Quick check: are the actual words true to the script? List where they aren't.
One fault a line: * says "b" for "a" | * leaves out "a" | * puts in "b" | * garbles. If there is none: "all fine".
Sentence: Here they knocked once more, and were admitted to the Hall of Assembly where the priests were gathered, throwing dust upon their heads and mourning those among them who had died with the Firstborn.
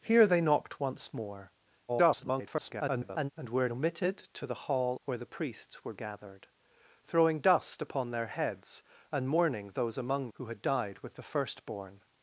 * garbles
* leaves out "of Assembly"
* leaves out "them"